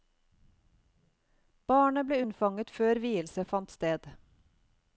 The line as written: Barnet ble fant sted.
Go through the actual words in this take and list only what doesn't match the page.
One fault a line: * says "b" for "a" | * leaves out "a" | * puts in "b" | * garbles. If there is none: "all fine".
* puts in "unnfanget før vielse"